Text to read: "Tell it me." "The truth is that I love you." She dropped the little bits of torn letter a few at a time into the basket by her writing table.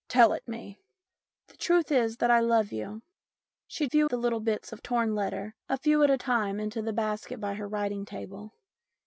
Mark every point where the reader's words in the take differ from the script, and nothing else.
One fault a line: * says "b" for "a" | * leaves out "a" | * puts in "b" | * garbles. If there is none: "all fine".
* says "few" for "dropped"